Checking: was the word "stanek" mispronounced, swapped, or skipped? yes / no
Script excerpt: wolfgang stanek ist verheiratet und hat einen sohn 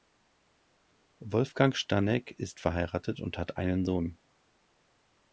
no